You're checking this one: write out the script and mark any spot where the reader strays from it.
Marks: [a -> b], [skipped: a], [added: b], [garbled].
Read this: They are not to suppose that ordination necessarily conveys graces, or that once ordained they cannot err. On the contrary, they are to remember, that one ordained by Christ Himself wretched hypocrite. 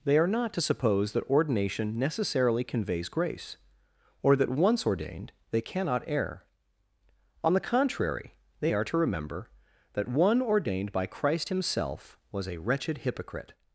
They are not to suppose that ordination necessarily conveys [graces, -> grace] or that once ordained they cannot err. On the contrary, they are to remember, that one ordained by Christ Himself [added: was a] wretched hypocrite.